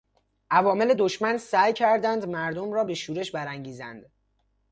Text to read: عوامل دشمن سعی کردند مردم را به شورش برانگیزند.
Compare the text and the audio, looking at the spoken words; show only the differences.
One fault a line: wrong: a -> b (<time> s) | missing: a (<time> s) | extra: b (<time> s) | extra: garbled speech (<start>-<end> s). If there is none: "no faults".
no faults